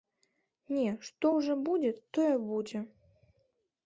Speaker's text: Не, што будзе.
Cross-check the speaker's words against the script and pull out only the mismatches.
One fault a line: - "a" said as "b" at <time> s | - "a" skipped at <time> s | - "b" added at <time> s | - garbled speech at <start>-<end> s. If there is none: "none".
- "ўжо будзе тое" added at 1.4 s